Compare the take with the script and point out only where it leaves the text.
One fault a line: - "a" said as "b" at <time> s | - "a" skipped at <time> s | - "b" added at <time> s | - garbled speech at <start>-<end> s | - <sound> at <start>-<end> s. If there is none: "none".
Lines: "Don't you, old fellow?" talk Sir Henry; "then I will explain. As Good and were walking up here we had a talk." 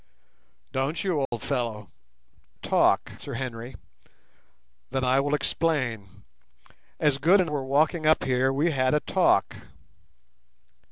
- dropout at 1.3-1.3 s